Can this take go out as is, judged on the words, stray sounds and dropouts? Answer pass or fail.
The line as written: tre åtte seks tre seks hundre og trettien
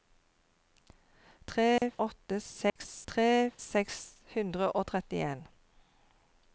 fail